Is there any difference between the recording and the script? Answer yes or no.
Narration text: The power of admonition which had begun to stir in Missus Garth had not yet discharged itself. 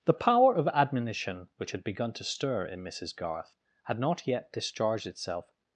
no